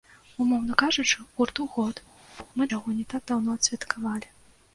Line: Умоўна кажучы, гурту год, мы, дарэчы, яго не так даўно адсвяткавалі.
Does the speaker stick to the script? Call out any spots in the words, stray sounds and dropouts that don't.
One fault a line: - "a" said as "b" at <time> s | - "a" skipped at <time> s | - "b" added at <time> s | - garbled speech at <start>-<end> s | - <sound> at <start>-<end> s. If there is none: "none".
- thud at 2.2-2.5 s
- "дарэчы" skipped at 2.7 s